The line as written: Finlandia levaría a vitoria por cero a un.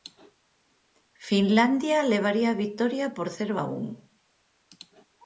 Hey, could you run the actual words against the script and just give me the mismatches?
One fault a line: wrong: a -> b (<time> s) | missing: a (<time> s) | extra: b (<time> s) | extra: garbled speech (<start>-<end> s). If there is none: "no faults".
no faults